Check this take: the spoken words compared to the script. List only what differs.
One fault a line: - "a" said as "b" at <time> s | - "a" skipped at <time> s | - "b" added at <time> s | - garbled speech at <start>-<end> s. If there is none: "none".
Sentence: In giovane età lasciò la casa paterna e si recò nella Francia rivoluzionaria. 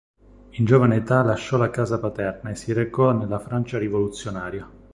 none